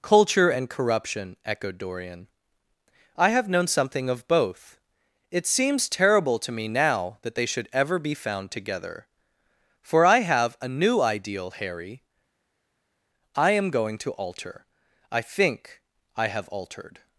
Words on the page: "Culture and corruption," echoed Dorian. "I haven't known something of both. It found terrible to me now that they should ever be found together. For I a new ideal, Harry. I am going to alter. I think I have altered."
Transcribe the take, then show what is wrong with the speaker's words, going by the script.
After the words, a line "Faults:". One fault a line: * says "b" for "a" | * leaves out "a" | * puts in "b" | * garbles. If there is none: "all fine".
"Culture and corruption," echoed Dorian. "I have known something of both. It seems terrible to me now that they should ever be found together. For I have a new ideal, Harry. I am going to alter. I think I have altered."
Faults:
* says "have" for "haven't"
* says "seems" for "found"
* puts in "have"